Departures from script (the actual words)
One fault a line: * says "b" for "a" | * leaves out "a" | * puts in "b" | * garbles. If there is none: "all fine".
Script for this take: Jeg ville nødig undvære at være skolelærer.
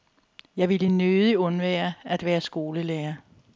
all fine